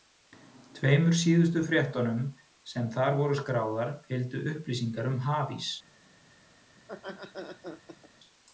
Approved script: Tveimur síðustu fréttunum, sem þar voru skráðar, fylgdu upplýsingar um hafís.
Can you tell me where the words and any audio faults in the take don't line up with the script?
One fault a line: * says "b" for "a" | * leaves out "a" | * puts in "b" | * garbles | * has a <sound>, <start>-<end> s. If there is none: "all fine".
* has a laugh, 6.8-8.1 s